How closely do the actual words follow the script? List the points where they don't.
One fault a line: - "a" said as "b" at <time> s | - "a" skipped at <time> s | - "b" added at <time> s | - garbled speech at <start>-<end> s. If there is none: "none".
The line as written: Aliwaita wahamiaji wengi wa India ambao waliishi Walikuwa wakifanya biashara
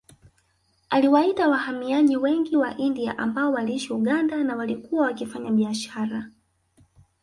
- "Uganda na" added at 3.9 s